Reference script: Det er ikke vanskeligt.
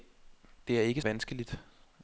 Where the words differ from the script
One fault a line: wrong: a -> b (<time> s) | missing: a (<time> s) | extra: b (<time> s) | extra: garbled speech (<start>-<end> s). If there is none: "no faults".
no faults